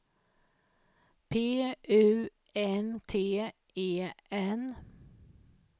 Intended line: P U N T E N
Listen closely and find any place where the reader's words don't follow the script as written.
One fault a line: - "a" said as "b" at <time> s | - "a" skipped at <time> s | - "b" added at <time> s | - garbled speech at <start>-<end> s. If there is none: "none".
none